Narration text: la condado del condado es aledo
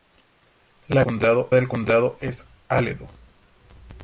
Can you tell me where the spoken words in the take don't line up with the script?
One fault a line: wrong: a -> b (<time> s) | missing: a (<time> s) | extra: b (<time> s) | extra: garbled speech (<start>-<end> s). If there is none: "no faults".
no faults